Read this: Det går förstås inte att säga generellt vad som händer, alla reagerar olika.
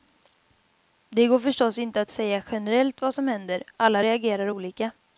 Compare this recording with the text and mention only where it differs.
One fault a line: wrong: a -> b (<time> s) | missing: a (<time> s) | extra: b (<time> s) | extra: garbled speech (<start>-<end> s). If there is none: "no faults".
no faults